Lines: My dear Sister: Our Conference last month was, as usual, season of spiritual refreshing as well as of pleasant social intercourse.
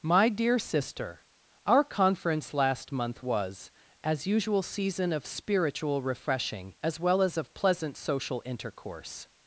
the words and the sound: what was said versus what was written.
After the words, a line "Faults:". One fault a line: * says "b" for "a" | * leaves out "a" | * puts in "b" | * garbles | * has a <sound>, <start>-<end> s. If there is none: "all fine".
My dear Sister: Our Conference last month was, as usual, season of spiritual refreshing as well as of pleasant social intercourse.
Faults:
all fine